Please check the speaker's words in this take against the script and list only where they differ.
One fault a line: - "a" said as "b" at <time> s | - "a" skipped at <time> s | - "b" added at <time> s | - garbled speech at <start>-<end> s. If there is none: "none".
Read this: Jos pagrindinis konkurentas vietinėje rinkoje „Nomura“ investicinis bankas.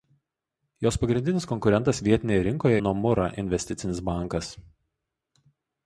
none